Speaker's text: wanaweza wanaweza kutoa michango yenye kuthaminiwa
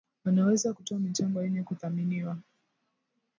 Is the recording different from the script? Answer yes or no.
yes